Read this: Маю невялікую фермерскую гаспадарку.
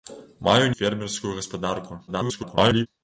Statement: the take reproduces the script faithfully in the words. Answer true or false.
false